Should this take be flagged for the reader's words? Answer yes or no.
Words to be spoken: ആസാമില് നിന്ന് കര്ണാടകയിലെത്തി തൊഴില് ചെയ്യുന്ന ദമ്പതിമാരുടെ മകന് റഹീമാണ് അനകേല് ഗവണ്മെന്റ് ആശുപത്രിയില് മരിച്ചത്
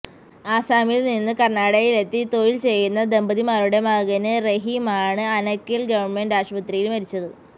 no